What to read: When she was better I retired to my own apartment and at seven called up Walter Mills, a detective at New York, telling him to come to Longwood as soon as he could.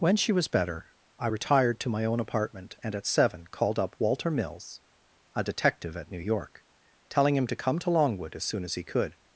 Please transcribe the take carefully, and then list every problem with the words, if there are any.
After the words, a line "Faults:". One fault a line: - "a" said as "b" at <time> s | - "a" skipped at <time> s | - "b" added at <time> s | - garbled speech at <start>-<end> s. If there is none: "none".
When she was better I retired to my own apartment and at seven called up Walter Mills, a detective at New York, telling him to come to Longwood as soon as he could.
Faults:
none